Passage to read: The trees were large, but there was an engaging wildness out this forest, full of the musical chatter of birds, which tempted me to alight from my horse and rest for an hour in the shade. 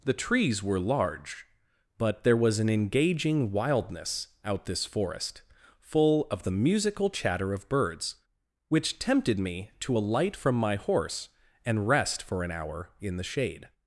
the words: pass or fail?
pass